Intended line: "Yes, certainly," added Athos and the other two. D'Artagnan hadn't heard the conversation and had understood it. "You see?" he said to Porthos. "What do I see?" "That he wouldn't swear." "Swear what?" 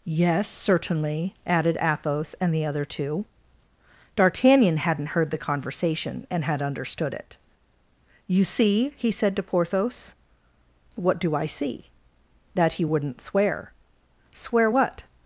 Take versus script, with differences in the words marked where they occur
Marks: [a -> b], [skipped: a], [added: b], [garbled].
"Yes, certainly," added Athos and the other two. D'Artagnan hadn't heard the conversation and had understood it. "You see?" he said to Porthos. "What do I see?" "That he wouldn't swear." "Swear what?"